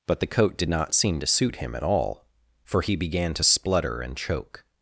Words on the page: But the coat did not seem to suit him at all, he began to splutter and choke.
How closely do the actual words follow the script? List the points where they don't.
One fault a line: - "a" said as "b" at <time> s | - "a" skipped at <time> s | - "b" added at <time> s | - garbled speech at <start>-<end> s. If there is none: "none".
- "for" added at 2.6 s